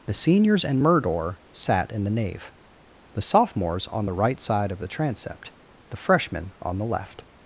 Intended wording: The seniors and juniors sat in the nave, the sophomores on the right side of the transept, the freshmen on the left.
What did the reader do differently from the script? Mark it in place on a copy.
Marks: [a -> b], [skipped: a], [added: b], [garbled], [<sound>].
The seniors and [juniors -> murdor] sat in the nave, the sophomores on the right side of the transept, the freshmen on the left.